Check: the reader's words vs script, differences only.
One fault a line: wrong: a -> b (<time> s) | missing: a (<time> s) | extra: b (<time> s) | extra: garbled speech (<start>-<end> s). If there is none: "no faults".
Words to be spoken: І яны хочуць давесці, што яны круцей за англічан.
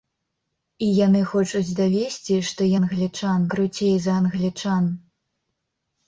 wrong: яны -> англічан (2.8 s)